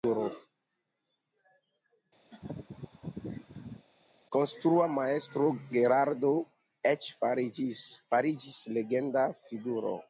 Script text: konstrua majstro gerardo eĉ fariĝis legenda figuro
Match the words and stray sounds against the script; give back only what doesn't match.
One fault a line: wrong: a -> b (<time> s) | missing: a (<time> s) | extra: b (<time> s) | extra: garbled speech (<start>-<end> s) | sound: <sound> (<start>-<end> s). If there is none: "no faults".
sound: laugh (2.3-3.9 s)